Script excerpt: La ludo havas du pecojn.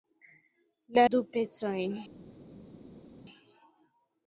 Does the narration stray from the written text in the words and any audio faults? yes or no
yes